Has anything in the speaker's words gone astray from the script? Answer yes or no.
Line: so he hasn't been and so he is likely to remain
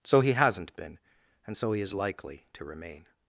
no